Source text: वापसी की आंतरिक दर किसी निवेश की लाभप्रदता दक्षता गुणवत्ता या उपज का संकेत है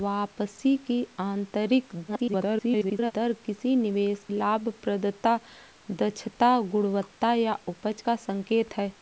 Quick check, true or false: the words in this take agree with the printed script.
false